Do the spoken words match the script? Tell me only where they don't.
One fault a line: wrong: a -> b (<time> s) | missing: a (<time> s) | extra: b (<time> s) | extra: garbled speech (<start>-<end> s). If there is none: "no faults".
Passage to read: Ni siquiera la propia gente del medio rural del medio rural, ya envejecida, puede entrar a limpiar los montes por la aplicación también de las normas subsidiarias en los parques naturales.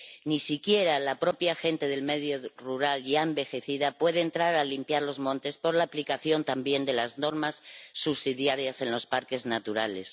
missing: del medio rural (3.0 s)